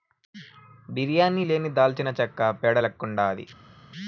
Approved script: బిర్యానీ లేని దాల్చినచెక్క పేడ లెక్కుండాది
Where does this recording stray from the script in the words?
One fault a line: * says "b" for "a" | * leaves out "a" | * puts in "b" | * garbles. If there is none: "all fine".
all fine